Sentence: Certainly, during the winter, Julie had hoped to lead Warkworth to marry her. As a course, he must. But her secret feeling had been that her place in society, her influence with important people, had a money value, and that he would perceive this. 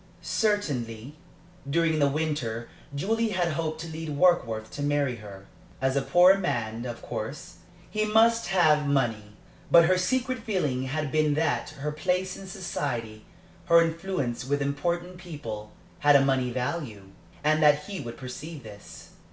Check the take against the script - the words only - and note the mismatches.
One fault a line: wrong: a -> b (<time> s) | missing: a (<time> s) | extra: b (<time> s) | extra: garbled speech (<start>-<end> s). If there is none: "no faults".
extra: poor man of (6.0 s)
extra: have money (8.5 s)